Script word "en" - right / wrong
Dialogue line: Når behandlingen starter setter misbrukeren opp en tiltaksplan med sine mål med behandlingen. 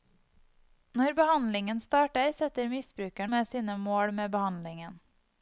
wrong